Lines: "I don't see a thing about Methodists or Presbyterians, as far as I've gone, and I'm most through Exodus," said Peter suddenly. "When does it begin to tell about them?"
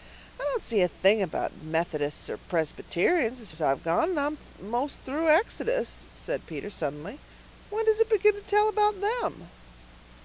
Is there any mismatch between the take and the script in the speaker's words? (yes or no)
yes